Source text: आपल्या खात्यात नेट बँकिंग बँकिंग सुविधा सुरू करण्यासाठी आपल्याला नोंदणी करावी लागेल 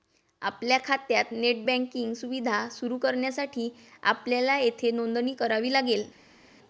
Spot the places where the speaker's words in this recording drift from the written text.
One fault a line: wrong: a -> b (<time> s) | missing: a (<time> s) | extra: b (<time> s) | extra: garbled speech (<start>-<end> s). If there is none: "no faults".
missing: बँकिंग (2.1 s)
extra: येथे (4.6 s)